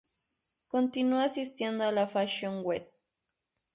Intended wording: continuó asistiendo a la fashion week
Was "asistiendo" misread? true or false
false